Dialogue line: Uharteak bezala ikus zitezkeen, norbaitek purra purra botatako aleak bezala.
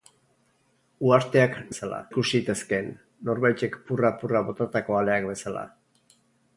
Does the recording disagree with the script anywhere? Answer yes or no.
no